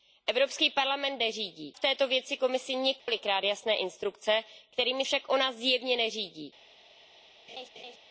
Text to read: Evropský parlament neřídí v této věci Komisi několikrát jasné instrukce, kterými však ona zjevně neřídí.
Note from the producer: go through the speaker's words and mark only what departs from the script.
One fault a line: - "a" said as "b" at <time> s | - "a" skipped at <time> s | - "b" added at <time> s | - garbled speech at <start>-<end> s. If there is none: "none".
none